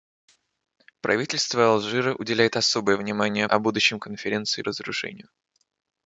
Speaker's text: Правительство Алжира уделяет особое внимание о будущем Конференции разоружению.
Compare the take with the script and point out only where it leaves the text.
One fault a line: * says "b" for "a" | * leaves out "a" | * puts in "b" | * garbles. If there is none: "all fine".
all fine